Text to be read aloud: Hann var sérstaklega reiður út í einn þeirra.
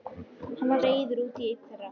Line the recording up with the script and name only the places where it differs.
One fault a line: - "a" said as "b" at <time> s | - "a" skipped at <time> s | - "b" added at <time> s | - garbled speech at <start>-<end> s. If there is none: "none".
- "sérstaklega" skipped at 0.8 s